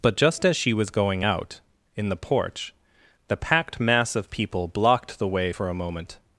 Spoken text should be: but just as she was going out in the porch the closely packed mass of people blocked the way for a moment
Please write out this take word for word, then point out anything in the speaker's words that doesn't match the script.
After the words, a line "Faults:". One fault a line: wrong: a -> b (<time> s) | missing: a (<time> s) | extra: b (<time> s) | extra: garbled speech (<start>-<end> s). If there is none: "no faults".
but just as she was going out in the porch the packed mass of people blocked the way for a moment
Faults:
missing: closely (3.4 s)